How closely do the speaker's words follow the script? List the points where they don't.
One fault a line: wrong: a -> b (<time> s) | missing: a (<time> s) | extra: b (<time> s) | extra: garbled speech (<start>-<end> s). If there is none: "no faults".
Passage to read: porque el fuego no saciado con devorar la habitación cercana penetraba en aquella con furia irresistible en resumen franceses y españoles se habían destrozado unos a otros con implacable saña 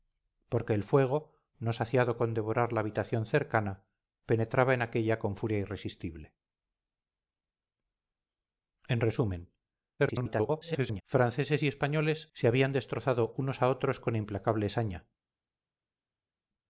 extra: garbled speech (10.0-11.0 s)